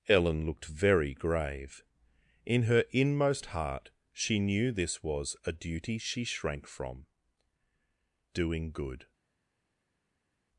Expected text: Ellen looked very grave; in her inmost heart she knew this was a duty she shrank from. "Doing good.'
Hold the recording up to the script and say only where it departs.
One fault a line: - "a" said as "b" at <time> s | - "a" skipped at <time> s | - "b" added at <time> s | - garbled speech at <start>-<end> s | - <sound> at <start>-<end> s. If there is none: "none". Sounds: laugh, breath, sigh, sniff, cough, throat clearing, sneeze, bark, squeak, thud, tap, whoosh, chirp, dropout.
none